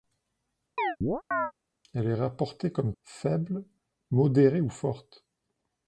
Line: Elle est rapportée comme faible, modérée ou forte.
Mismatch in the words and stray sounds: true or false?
true